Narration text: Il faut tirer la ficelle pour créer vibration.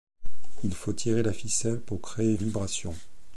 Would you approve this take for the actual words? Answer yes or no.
yes